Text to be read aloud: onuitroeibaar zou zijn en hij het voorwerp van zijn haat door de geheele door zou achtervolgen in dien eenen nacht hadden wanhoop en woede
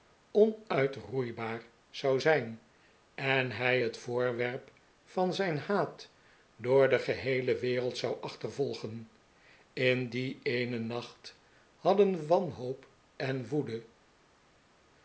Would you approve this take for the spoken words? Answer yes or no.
no